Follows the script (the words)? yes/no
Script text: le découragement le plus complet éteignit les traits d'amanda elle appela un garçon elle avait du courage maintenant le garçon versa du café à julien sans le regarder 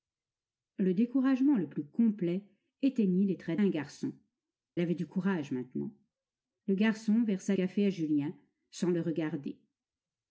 no